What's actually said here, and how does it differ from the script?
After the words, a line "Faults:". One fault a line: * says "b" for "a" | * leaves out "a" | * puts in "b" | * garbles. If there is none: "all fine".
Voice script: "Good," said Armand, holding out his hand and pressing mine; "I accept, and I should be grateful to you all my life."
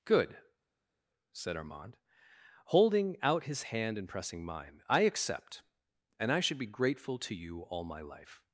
"Good," said Armand, holding out his hand and pressing mine; "I accept, and I should be grateful to you all my life."
Faults:
all fine